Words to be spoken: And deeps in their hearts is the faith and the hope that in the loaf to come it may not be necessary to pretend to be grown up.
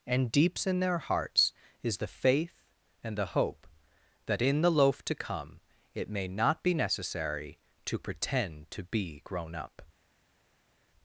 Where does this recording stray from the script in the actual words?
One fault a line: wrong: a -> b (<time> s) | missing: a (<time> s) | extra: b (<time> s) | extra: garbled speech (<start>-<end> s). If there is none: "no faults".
no faults